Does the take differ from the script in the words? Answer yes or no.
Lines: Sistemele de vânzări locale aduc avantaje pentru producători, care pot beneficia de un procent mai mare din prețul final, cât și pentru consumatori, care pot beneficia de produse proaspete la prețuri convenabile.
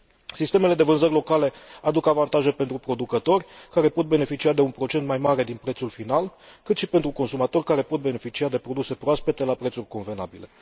no